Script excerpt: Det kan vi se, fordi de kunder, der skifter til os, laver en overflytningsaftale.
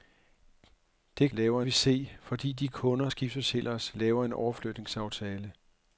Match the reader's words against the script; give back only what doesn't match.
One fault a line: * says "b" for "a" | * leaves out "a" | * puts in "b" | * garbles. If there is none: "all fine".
* says "laver" for "kan"
* leaves out "der"